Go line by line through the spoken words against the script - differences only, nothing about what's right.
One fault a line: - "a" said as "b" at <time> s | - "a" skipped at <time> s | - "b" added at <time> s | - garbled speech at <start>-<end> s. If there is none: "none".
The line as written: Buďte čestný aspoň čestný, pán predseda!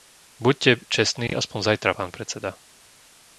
- "čestný" said as "zajtra" at 1.8 s